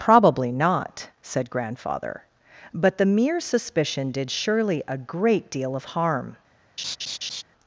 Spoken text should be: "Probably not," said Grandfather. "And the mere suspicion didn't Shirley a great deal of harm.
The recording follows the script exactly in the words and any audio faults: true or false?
false